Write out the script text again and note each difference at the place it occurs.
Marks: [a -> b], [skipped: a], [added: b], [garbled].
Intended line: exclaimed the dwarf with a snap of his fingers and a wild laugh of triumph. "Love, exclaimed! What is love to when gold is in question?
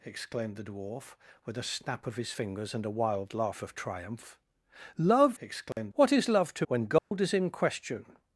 exclaimed the dwarf with a snap of his fingers and a wild laugh of triumph. "Love, exclaimed! What is love to when gold is in question?